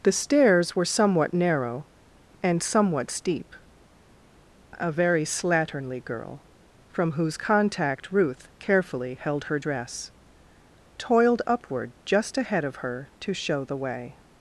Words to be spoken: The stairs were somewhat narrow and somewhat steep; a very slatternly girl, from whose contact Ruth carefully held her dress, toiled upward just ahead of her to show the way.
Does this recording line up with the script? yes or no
yes